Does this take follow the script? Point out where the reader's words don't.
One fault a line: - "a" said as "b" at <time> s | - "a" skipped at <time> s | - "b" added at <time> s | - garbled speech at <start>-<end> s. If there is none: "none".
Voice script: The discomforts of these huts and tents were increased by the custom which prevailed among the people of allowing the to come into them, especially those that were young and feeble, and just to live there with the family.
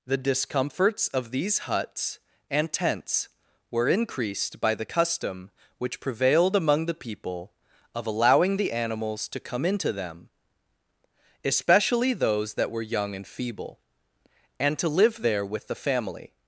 - "animals" added at 8.7 s
- "just" skipped at 14.8 s